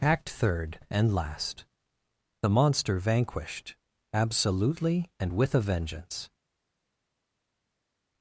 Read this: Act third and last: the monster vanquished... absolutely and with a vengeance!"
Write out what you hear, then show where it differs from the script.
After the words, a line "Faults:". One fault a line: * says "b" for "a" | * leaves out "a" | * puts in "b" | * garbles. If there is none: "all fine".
Act third and last: the monster vanquished... absolutely and with a vengeance!"
Faults:
all fine